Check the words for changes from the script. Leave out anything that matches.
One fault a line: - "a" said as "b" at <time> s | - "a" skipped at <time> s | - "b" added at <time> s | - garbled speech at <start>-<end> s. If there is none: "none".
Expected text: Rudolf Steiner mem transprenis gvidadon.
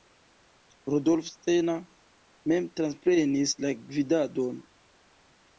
- "la" added at 3.7 s